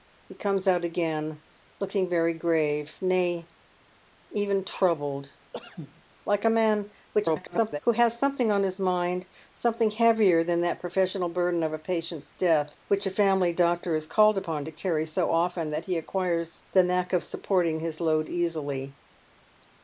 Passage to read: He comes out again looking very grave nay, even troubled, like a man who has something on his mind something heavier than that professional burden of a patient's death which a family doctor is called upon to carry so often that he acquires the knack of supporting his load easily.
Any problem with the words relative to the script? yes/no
yes